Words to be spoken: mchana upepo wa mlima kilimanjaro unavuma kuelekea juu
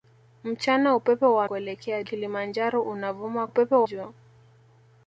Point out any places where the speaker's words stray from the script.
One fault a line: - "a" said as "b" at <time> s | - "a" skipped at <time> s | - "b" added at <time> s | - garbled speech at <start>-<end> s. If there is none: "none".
- "mlima" said as "kuelekea" at 1.4 s
- "kuelekea" said as "upepo" at 3.4 s